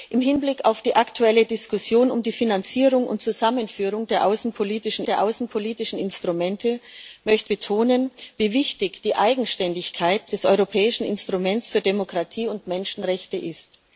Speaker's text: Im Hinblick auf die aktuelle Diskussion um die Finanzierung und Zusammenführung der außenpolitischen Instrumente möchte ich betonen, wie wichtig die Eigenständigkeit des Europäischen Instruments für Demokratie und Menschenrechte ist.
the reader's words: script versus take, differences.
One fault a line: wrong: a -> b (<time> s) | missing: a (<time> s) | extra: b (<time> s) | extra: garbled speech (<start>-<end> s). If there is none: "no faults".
extra: der außenpolitischen (5.0 s)
missing: ich (7.5 s)